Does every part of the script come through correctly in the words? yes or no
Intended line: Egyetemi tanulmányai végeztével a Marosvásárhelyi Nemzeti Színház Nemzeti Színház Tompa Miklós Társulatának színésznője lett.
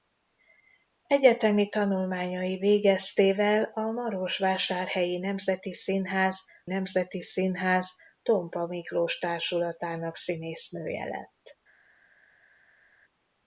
yes